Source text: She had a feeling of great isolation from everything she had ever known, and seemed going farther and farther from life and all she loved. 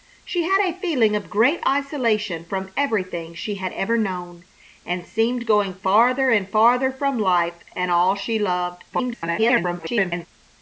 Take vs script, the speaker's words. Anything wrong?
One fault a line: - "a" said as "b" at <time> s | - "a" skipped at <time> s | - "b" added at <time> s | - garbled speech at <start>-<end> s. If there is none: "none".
- garbled speech at 8.9-10.3 s